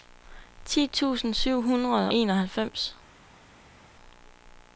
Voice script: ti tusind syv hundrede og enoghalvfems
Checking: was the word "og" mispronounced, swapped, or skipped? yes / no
yes